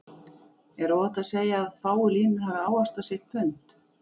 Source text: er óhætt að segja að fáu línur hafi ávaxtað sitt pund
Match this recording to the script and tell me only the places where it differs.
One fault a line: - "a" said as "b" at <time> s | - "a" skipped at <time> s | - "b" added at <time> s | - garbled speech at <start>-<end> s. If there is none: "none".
none